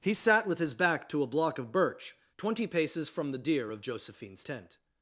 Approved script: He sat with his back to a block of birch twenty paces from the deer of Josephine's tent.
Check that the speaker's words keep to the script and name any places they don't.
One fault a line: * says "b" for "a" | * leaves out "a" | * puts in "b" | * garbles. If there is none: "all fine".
all fine